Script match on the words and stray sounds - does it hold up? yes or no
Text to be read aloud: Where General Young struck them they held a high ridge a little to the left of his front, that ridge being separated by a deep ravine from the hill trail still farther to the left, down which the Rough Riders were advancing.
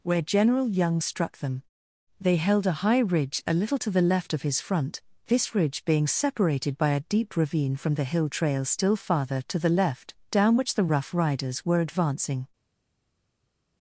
no